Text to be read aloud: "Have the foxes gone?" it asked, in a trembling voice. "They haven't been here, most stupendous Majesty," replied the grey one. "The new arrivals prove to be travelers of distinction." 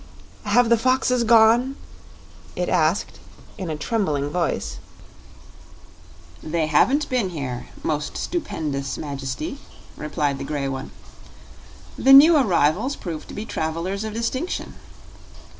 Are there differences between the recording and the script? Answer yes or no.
no